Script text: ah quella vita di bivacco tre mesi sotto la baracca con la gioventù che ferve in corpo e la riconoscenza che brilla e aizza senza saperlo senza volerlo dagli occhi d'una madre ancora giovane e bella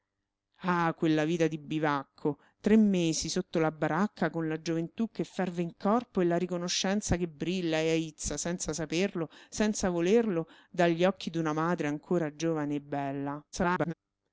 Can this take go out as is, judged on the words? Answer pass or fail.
fail